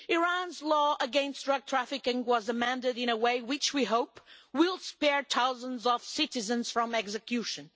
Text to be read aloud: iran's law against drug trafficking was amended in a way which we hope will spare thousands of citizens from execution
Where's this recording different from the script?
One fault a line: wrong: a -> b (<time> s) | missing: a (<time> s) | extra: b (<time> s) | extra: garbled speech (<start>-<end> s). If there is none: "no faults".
no faults